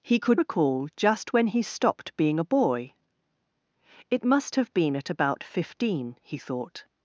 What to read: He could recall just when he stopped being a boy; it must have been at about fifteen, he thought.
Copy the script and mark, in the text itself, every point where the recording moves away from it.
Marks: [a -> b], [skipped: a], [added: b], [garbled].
He could recall just when he stopped being a boy; it must have been at about fifteen, he thought.